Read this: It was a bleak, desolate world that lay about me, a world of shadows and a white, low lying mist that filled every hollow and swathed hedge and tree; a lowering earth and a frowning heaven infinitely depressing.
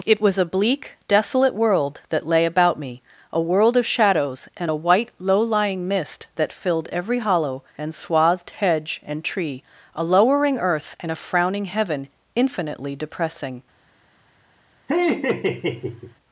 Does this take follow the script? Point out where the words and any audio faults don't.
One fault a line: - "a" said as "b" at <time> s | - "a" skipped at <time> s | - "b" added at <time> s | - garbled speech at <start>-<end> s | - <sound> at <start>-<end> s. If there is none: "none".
- laugh at 14.9-16.2 s